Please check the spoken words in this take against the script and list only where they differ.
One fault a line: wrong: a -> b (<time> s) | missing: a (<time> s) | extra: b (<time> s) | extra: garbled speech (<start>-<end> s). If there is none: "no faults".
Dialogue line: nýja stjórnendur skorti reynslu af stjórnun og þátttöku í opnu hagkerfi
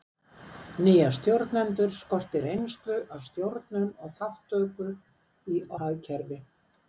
missing: opnu (5.6 s)